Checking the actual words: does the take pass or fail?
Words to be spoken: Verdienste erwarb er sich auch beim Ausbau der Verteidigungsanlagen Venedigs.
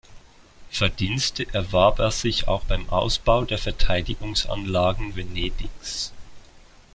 pass